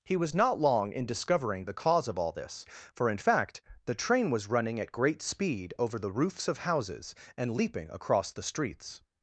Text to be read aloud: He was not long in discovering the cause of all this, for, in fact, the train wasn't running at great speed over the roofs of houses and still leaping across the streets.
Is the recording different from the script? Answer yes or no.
yes